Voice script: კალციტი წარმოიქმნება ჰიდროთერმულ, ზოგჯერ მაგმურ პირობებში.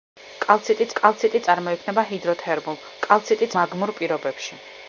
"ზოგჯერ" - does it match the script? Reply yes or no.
no